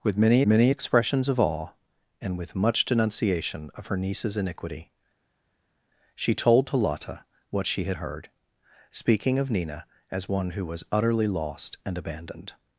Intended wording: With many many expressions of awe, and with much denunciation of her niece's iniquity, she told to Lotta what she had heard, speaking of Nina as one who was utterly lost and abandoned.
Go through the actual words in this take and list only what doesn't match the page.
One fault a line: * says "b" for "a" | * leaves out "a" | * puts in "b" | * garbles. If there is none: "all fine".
all fine